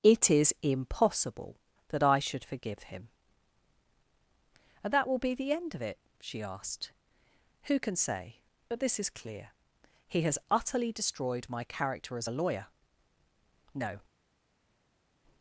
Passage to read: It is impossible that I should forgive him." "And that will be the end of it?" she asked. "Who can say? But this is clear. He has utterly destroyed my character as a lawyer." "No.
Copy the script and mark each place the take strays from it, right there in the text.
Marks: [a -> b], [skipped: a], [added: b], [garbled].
It is impossible that I should forgive him." "And that will be the end of it?" she asked. "Who can say? But this is clear. He has utterly destroyed my character as a lawyer." "No.